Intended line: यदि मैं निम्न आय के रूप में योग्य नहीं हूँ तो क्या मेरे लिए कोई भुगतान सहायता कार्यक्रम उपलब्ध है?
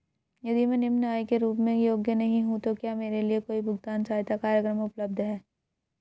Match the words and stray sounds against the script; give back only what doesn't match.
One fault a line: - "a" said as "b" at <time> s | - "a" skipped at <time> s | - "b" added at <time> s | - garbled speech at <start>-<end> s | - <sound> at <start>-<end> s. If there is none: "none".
none